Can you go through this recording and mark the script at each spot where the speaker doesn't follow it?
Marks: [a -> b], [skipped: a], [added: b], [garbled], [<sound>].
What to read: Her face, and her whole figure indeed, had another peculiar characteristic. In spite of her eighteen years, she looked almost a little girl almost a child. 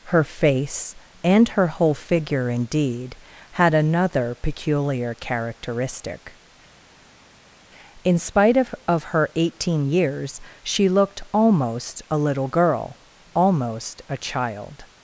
Her face, and her whole figure indeed, had another peculiar characteristic. In spite of [added: of] her eighteen years, she looked almost a little girl almost a child.